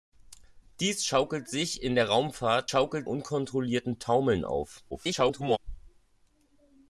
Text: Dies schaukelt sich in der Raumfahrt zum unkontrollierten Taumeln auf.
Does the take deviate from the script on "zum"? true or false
true